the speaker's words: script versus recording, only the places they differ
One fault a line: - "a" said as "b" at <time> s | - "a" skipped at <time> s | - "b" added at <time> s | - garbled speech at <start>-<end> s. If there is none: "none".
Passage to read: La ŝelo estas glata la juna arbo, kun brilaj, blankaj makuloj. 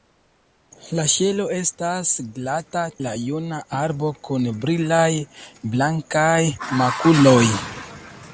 none